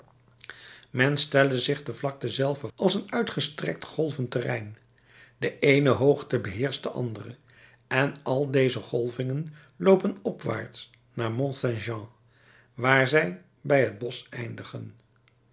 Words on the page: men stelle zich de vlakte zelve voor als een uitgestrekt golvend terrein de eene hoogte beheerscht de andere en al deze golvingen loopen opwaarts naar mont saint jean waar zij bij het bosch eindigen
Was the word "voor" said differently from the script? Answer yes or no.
yes